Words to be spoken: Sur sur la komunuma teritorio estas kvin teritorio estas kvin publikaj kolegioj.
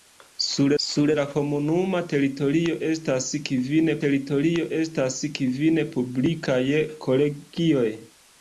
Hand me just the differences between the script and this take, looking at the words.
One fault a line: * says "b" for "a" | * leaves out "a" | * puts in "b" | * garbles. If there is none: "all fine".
all fine